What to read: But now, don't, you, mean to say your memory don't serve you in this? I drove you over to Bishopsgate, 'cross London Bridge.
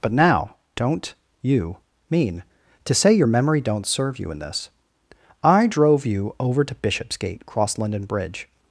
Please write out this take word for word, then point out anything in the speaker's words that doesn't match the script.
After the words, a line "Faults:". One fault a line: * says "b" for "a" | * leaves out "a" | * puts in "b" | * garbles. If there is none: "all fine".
But now, don't, you, mean to say your memory don't serve you in this? I drove you over to Bishopsgate, 'cross London Bridge.
Faults:
all fine